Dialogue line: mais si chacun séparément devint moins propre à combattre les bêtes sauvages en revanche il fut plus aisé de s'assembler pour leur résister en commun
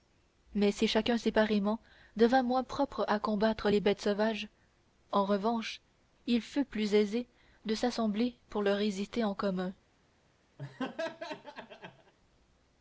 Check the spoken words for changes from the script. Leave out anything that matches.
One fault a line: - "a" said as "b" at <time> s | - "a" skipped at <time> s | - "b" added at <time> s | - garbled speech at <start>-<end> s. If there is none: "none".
none